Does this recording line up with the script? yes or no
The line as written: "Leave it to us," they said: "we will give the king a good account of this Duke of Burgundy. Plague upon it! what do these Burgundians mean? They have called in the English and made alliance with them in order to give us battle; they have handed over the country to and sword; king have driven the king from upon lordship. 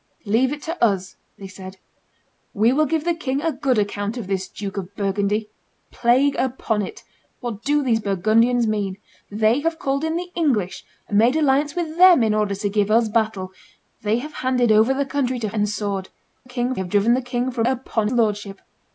yes